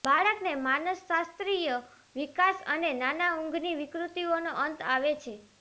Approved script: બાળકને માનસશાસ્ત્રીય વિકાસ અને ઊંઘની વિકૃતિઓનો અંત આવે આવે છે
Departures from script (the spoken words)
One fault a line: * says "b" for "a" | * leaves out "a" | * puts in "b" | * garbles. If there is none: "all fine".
* puts in "નાના"
* leaves out "આવે"